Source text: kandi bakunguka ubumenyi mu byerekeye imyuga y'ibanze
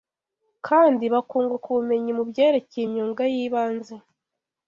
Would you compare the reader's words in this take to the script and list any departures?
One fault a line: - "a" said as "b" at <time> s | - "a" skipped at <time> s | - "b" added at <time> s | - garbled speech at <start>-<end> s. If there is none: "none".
none